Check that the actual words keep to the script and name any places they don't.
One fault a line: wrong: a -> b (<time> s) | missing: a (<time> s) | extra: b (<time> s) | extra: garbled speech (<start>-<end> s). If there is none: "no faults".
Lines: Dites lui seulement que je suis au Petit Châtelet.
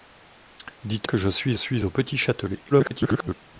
missing: lui seulement (1.1 s)
extra: suis (1.5 s)
extra: garbled speech (2.7-3.3 s)